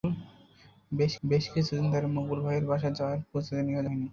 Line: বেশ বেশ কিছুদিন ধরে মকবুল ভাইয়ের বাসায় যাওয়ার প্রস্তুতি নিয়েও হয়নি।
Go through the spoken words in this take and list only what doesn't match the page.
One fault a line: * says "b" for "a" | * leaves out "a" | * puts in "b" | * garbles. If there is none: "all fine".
all fine